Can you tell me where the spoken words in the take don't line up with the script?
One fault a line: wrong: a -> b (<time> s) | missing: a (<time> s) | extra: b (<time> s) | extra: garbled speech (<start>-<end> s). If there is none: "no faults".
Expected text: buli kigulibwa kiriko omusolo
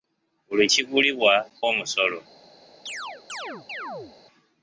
missing: kiriko (1.3 s)